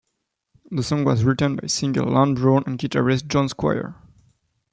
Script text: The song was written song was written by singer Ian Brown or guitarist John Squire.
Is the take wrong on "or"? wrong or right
wrong